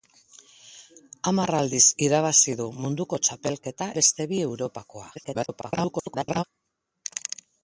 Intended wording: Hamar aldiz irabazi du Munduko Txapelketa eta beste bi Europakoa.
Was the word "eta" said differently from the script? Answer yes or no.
yes